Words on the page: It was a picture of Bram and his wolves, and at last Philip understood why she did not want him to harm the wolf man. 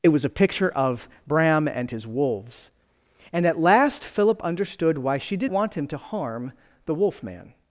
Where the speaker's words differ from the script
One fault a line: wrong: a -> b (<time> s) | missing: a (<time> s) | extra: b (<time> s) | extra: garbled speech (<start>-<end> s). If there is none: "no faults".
missing: not (5.5 s)